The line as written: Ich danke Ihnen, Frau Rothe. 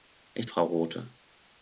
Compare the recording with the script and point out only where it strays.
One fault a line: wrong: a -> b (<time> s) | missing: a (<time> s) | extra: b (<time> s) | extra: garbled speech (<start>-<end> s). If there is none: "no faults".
missing: danke Ihnen (0.5 s)